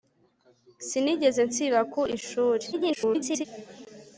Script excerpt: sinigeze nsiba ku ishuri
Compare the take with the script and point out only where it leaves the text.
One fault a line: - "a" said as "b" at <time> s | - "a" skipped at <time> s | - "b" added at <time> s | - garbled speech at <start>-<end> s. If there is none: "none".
- garbled speech at 2.7-3.5 s